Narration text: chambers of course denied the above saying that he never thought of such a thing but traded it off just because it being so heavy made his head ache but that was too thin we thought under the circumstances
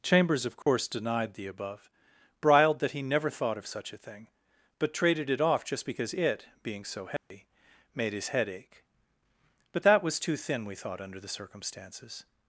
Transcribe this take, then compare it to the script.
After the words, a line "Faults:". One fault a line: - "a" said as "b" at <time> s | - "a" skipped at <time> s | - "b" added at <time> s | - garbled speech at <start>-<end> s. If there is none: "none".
chambers of course denied the above briled that he never thought of such a thing but traded it off just because it being so heavy made his head ache but that was too thin we thought under the circumstances
Faults:
- "saying" said as "briled" at 2.4 s